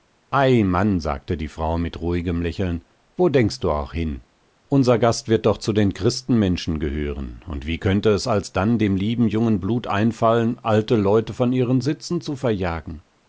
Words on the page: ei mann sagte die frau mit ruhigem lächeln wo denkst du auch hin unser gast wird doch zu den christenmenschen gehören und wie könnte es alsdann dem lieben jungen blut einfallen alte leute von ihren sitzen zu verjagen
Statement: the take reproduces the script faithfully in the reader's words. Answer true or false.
true